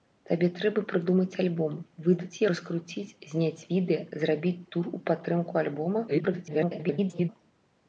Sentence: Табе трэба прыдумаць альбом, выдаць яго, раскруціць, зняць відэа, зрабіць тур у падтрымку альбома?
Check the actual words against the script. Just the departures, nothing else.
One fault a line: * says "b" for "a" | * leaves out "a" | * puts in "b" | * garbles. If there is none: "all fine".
* leaves out "яго"
* garbles